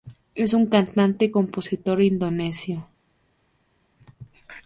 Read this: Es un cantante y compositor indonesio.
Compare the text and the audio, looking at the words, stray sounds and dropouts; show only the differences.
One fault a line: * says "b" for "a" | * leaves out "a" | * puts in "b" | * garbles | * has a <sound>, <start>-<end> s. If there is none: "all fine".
all fine